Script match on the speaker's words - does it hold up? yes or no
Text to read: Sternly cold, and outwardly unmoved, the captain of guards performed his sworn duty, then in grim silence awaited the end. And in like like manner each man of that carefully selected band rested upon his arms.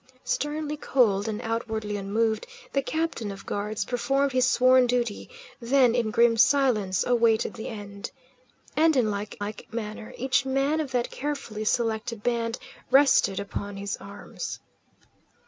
yes